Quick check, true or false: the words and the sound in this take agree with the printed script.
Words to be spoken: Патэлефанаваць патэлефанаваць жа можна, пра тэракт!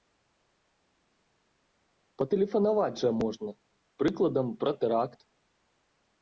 false